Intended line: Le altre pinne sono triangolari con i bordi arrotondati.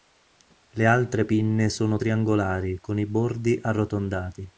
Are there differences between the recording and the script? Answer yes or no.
no